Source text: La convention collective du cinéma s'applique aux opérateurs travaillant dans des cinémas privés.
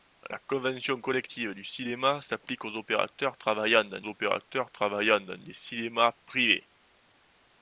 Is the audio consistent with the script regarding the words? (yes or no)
no